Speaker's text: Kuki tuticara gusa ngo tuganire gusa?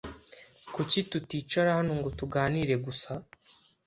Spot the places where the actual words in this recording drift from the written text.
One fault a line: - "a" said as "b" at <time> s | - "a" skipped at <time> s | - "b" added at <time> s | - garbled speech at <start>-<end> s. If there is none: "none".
- "gusa" said as "hano" at 1.8 s